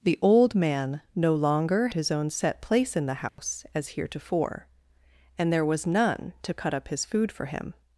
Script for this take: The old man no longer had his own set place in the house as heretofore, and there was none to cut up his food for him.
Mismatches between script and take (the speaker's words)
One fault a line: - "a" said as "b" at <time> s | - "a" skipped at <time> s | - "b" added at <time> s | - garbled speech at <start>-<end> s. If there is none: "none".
- "had" skipped at 1.9 s